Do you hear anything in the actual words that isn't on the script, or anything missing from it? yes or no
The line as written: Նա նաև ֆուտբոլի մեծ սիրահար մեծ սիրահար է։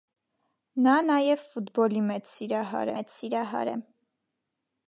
no